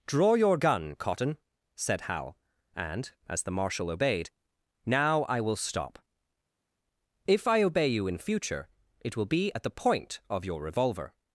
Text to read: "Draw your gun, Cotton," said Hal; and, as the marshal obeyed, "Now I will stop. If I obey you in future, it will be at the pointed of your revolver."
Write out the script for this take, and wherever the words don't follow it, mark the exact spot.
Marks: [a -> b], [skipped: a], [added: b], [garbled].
"Draw your gun, Cotton," said Hal; and, as the marshal obeyed, "Now I will stop. If I obey you in future, it will be at the [pointed -> point] of your revolver."